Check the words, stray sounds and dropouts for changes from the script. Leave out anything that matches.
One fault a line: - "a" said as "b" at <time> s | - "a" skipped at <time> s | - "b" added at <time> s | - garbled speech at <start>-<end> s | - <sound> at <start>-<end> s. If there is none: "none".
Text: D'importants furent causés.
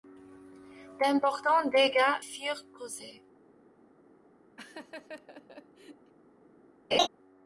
- "dégâts" added at 1.7 s
- laugh at 4.6-6.1 s
- laugh at 6.9-7.1 s